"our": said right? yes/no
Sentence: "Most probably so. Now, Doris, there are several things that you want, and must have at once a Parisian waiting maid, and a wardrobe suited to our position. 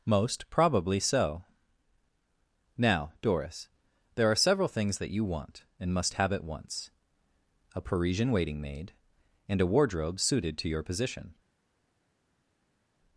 no